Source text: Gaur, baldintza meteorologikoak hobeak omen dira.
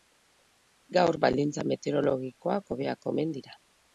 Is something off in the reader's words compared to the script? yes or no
no